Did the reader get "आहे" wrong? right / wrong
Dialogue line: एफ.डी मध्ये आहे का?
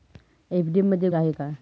right